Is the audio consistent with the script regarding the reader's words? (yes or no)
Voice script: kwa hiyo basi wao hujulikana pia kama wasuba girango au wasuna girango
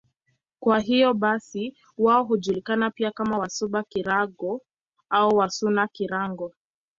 yes